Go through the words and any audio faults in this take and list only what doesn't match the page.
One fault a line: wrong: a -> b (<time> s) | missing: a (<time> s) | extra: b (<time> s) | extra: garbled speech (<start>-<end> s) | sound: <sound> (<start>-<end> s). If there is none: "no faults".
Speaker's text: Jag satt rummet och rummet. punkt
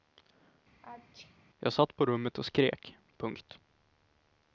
sound: sneeze (0.8-1.4 s)
extra: på (2.0 s)
wrong: rummet -> skrek (2.5 s)